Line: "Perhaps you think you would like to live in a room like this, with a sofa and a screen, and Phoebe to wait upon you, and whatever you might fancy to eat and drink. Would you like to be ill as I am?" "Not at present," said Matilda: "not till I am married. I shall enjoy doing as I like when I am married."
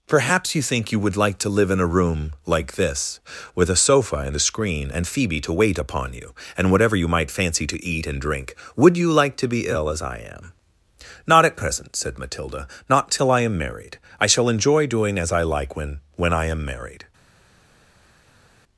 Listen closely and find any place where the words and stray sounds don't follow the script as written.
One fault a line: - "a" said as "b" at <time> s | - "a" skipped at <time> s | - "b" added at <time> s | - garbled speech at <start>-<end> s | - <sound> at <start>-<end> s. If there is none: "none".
- "when" added at 16.1 s